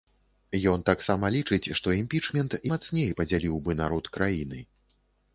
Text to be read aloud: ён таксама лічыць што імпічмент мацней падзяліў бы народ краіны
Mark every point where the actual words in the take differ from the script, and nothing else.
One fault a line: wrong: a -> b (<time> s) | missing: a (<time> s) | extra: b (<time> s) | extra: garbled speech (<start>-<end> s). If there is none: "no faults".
no faults